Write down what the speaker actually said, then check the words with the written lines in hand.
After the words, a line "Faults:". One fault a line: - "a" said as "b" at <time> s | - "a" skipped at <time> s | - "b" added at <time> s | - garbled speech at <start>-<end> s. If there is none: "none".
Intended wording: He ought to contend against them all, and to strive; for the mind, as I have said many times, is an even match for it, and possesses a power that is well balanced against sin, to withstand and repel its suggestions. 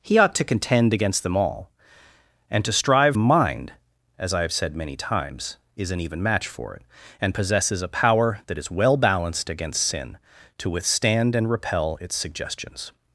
He ought to contend against them all, and to strive; mind, as I have said many times, is an even match for it, and possesses a power that is well balanced against sin, to withstand and repel its suggestions.
Faults:
- "for the" skipped at 3.2 s